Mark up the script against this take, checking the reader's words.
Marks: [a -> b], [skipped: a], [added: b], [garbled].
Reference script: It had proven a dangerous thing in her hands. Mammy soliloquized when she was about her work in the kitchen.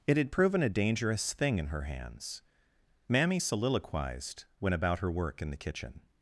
It had proven a dangerous thing in her hands. Mammy soliloquized when [skipped: she was] about her work in the kitchen.